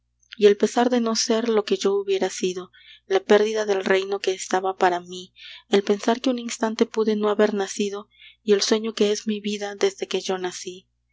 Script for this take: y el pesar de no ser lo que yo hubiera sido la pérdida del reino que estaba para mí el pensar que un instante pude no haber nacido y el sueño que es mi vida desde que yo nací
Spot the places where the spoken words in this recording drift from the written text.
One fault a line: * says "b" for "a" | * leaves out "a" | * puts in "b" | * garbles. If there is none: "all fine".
all fine